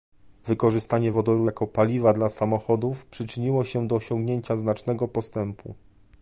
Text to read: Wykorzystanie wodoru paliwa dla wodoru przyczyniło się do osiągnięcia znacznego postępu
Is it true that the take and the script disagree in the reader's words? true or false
true